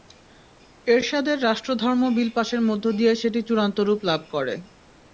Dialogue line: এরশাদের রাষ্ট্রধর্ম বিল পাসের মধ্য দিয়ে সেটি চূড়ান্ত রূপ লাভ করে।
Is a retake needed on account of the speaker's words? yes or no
no